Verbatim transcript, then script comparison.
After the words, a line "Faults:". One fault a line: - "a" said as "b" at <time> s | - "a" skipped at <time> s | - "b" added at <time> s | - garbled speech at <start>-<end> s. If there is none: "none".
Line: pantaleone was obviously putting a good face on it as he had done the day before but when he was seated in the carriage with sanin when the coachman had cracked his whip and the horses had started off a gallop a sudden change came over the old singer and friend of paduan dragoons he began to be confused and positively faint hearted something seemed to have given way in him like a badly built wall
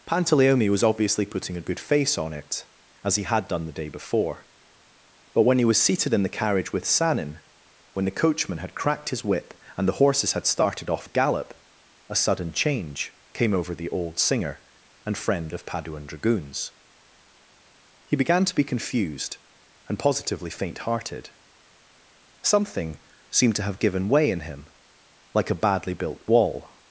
pantaleone was obviously putting a good face on it as he had done the day before but when he was seated in the carriage with sanin when the coachman had cracked his whip and the horses had started off a gallop a sudden change came over the old singer and friend of paduan dragoons he began to be confused and positively faint hearted something seemed to have given way in him like a badly built wall
Faults:
none